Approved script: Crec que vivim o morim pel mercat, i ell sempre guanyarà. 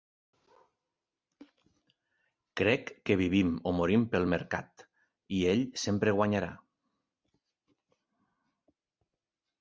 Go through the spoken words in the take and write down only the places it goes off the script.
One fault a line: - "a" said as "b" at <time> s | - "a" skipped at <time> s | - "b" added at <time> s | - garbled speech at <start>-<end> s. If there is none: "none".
none